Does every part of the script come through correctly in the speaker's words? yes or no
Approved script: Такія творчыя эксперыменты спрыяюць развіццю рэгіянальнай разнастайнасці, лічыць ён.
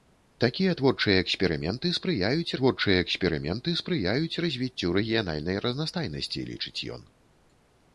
no